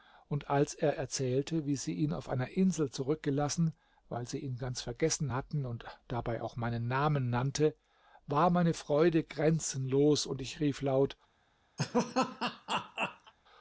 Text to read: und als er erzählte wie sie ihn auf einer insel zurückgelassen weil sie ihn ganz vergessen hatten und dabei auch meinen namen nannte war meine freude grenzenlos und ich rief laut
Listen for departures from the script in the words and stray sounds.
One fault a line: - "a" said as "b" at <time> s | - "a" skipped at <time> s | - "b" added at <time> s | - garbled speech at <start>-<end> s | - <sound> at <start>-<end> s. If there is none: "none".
- laugh at 11.8-13.3 s